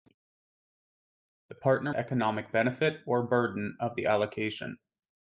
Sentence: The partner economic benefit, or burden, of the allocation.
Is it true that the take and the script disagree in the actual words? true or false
false